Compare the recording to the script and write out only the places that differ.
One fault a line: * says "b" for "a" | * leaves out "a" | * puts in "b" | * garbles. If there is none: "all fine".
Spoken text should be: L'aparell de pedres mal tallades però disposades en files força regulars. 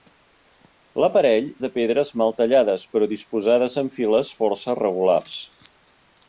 all fine